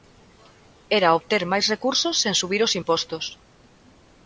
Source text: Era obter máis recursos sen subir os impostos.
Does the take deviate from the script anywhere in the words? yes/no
no